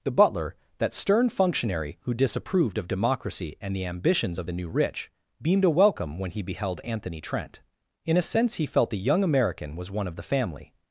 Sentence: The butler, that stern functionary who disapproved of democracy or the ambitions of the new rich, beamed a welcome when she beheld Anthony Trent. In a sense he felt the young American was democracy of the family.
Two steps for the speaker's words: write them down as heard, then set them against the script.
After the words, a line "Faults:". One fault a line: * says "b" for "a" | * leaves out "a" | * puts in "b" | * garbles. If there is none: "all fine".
The butler, that stern functionary who disapproved of democracy and the ambitions of the new rich, beamed a welcome when he beheld Anthony Trent. In a sense he felt the young American was one of the family.
Faults:
* says "and" for "or"
* says "he" for "she"
* says "one" for "democracy"